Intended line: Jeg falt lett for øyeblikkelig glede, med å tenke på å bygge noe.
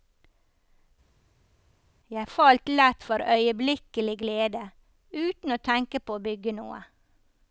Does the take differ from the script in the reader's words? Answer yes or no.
yes